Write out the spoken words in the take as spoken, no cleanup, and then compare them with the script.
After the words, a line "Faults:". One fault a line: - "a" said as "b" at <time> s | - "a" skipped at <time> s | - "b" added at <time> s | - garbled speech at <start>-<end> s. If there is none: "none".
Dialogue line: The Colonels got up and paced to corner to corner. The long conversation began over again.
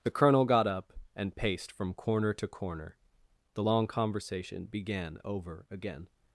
The Colonel got up and paced from corner to corner. The long conversation began over again.
Faults:
- "Colonels" said as "Colonel" at 0.1 s
- "to" said as "from" at 1.7 s